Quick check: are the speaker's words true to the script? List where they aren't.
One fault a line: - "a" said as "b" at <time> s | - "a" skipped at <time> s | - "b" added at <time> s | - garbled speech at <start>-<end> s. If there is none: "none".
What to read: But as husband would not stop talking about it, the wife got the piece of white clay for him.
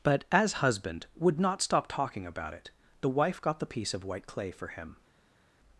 none